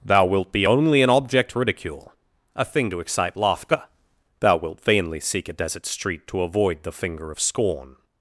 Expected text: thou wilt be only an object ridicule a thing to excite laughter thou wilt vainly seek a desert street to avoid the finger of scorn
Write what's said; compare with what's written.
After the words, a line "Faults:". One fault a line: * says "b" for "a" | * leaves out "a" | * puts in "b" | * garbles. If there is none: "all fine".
thou wilt be only an object ridicule a thing to excite laughter thou wilt vainly seek a desert street to avoid the finger of scorn
Faults:
all fine